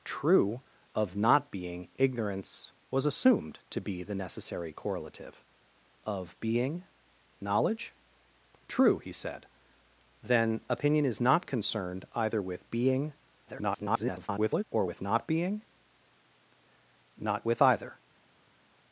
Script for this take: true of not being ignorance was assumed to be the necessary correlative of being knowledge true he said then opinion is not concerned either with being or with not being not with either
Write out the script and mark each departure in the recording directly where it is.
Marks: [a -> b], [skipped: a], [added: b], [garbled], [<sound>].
true of not being ignorance was assumed to be the necessary correlative of being knowledge true he said then opinion is not concerned either with being [garbled] or with not being not with either